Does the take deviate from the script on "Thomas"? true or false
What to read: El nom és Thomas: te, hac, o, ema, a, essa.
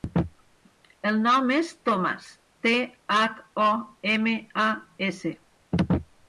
false